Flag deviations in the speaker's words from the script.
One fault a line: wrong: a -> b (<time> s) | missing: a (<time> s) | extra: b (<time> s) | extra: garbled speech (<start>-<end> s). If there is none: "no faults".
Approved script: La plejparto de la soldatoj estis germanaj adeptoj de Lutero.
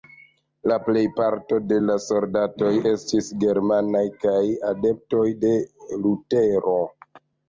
extra: kaj (4.3 s)